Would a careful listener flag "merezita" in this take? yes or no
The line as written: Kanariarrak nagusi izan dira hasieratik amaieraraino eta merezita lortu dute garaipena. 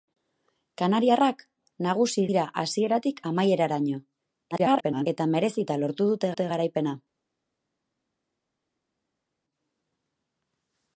no